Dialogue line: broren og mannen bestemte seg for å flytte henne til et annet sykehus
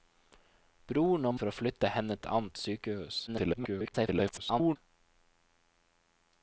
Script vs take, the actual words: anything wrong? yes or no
yes